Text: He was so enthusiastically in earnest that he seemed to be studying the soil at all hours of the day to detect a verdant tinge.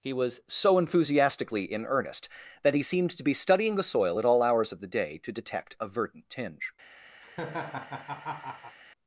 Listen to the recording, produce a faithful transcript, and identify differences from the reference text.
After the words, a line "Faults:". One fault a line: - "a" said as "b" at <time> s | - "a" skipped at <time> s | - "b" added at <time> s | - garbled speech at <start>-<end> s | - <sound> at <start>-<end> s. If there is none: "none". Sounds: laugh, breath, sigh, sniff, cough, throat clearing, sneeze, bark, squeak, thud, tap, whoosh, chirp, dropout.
He was so enthusiastically in earnest that he seemed to be studying the soil at all hours of the day to detect a verdant tinge.
Faults:
- laugh at 7.2-8.8 s